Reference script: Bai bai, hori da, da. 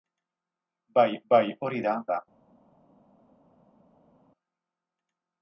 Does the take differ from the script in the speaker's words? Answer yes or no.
no